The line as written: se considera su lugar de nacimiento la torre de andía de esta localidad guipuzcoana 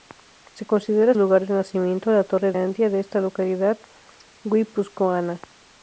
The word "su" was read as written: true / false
false